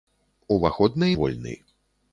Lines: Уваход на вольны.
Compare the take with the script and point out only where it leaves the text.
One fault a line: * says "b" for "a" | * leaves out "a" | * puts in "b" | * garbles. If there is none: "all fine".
all fine